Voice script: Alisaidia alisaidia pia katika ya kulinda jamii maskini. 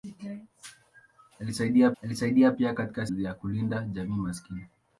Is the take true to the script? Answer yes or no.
yes